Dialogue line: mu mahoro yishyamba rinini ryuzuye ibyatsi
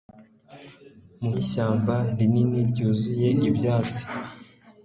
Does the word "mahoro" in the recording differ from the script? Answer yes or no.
yes